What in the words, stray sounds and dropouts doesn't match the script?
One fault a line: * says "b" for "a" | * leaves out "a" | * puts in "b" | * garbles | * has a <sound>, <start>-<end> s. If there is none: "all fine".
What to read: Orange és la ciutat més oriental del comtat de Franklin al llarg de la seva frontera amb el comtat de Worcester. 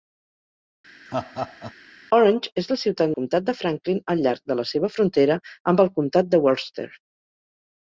* has a laugh, 1.1-1.7 s
* leaves out "més oriental del"